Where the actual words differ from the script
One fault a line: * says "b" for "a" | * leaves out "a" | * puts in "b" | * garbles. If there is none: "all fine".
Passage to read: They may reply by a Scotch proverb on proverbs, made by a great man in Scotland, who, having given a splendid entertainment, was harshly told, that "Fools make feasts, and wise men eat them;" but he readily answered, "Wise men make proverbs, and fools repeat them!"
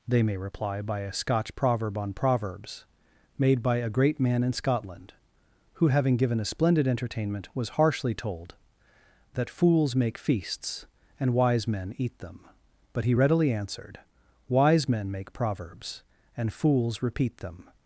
all fine